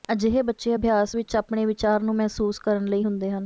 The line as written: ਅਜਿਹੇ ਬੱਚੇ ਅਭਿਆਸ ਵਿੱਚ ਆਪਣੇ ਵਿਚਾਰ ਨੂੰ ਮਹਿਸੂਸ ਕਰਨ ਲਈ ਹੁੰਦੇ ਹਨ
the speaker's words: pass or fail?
pass